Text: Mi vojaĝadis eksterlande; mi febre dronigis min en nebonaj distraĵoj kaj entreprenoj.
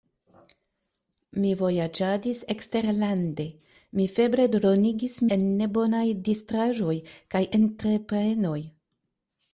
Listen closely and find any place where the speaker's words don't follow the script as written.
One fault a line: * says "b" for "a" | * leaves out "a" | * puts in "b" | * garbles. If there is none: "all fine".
* leaves out "min"